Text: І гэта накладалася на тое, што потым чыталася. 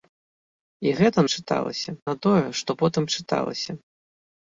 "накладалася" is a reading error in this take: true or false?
true